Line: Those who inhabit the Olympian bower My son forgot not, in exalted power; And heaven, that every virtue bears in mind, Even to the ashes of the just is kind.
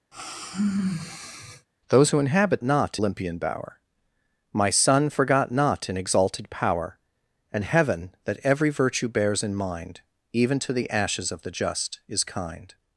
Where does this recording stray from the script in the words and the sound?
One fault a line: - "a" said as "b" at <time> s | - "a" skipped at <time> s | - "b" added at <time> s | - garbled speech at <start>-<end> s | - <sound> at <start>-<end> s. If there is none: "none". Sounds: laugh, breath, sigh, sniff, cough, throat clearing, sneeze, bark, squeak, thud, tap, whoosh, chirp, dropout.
- sigh at 0.1-1.7 s
- "the" said as "not" at 2.6 s